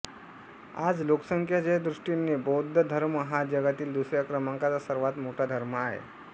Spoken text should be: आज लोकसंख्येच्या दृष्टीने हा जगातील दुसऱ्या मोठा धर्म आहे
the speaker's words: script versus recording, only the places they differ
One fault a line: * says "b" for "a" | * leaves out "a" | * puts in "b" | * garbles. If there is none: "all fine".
* puts in "बौद्ध धर्म"
* puts in "क्रमांकाचा सर्वात"